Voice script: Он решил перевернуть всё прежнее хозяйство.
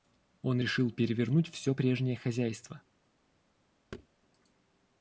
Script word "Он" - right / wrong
right